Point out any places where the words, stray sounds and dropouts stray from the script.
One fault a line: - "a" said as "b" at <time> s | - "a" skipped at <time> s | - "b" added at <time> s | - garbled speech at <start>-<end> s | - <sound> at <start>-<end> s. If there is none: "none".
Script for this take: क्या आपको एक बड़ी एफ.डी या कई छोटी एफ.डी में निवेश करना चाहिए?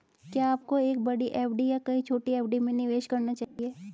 - dropout at 3.4-3.6 s